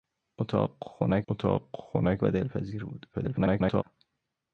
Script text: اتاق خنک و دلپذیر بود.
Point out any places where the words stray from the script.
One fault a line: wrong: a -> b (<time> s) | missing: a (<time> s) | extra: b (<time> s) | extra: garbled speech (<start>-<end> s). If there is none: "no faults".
extra: اتاق خنک (1.3 s)
extra: garbled speech (3.1-3.8 s)